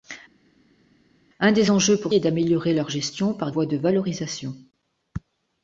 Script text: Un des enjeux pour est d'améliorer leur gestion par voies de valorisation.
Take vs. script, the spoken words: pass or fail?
pass